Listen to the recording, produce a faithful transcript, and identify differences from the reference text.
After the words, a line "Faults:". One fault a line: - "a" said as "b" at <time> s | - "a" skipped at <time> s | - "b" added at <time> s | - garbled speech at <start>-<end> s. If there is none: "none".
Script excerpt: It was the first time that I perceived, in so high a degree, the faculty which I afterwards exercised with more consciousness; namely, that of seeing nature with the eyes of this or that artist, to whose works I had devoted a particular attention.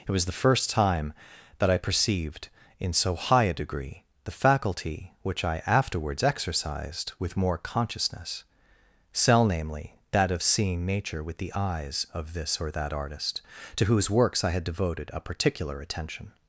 It was the first time that I perceived, in so high a degree, the faculty which I afterwards exercised with more consciousness; cell namely, that of seeing nature with the eyes of this or that artist, to whose works I had devoted a particular attention.
Faults:
- "cell" added at 9.1 s